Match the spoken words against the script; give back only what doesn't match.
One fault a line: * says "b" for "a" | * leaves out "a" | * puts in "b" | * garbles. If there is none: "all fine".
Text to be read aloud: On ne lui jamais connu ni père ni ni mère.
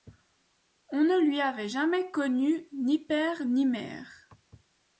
* puts in "avait"
* leaves out "ni"